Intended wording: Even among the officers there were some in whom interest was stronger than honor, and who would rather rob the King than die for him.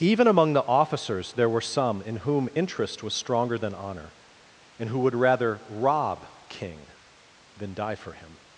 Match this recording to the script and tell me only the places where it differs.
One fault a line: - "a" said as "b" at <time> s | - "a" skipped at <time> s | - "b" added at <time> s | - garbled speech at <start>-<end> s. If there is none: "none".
- "the" skipped at 6.2 s